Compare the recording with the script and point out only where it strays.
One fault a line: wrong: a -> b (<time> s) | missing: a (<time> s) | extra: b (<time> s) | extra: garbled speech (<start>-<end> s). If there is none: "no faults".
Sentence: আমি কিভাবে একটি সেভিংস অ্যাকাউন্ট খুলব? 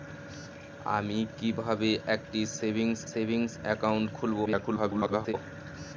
extra: সেভিংস (3.1 s)
extra: garbled speech (4.4-5.3 s)